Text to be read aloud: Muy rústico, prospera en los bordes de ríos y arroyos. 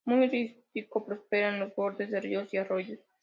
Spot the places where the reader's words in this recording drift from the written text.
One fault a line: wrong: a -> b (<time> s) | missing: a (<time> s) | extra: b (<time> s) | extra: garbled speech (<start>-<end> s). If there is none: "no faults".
no faults